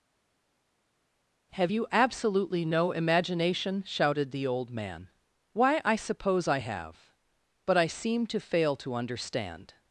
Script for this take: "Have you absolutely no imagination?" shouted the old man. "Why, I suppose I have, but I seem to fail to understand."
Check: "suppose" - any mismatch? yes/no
no